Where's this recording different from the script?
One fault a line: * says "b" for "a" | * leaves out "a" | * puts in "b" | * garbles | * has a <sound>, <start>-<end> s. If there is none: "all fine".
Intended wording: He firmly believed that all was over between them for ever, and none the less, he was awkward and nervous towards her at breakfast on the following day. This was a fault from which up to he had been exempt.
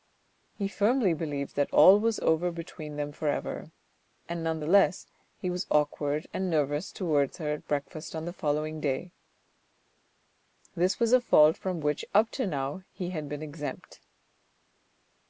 * puts in "now"